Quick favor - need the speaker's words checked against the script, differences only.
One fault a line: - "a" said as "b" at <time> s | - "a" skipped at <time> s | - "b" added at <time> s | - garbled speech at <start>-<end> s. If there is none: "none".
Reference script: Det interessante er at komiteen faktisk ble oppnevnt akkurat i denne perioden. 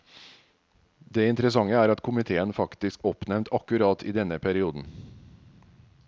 - "ble" skipped at 3.0 s